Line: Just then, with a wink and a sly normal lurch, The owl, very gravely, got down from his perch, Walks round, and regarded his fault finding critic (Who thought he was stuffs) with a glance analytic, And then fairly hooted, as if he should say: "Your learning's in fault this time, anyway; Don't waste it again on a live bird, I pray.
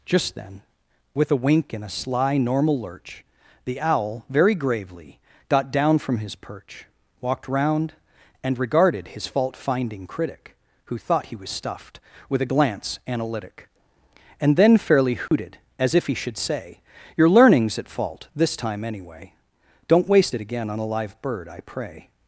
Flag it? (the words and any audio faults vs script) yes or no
yes